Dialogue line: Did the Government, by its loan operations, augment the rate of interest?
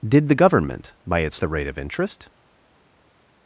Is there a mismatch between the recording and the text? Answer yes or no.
yes